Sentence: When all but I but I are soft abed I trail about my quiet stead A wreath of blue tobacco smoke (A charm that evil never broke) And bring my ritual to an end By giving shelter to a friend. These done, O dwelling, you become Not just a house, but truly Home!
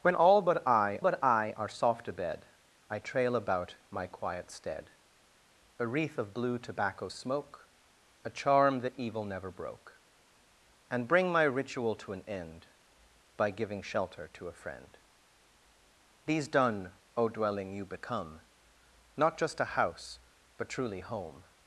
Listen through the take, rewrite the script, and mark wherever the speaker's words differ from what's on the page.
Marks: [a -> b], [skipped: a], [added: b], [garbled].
When all but I but I are soft abed I trail about my quiet stead A wreath of blue tobacco smoke (A charm that evil never broke) And bring my ritual to an end By giving shelter to a friend. These done, O dwelling, you become Not just a house, but truly Home!